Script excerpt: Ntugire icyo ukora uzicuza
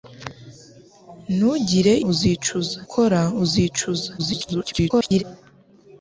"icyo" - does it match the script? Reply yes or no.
no